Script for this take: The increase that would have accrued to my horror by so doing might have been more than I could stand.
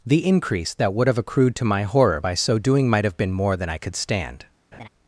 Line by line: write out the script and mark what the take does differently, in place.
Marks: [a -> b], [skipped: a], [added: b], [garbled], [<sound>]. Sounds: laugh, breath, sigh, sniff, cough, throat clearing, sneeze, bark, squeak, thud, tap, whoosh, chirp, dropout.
The increase that would have accrued to my horror by so doing might have been more than I could stand. [laugh]